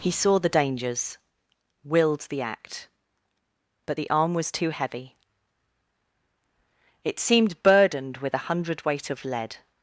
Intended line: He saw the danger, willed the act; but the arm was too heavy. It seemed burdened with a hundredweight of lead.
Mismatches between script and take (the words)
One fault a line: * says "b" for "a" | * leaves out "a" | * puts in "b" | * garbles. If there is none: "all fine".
* says "dangers" for "danger"